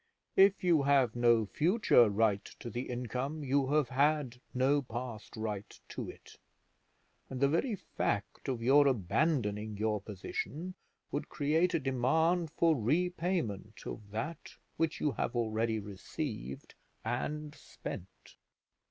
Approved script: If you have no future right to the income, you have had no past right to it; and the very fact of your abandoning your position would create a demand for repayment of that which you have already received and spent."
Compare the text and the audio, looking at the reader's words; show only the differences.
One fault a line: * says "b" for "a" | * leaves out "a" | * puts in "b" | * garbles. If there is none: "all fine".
all fine